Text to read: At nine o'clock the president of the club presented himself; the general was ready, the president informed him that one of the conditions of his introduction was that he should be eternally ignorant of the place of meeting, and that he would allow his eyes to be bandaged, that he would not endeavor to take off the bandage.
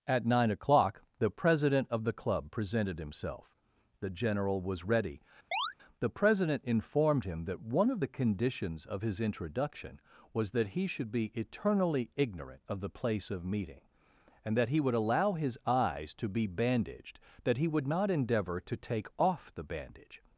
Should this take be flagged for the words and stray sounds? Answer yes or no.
yes